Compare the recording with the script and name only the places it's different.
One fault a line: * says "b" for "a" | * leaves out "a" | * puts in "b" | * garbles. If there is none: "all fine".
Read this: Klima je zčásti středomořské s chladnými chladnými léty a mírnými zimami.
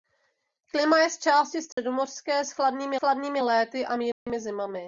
all fine